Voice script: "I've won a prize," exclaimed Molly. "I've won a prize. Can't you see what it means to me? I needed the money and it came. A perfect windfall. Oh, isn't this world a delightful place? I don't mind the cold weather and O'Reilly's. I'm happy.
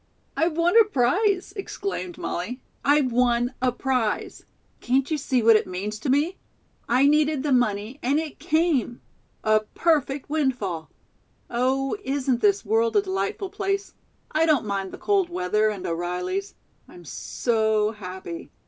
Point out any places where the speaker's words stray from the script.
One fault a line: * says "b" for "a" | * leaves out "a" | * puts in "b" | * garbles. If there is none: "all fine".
* puts in "so"